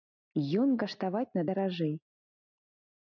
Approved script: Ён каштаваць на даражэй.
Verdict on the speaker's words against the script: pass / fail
pass